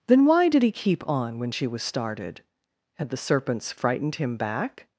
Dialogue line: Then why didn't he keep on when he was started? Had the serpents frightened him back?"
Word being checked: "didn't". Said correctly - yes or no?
no